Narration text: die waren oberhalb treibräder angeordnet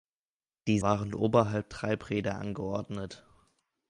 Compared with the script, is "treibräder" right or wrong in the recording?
right